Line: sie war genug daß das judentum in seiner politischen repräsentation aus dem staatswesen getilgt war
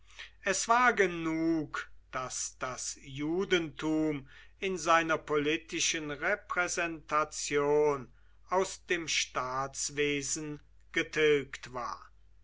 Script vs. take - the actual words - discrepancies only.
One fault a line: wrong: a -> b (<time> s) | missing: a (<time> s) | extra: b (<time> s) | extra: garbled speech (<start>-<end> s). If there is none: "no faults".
wrong: sie -> es (0.4 s)